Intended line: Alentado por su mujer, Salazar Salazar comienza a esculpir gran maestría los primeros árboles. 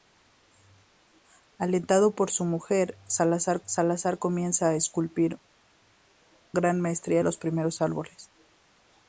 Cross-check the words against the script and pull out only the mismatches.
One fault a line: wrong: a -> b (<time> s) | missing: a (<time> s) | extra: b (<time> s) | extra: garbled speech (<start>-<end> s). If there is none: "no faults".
no faults